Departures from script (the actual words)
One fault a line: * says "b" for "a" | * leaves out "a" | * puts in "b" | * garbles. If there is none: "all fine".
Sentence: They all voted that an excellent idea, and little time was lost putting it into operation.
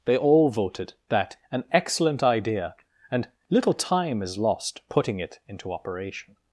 * says "is" for "was"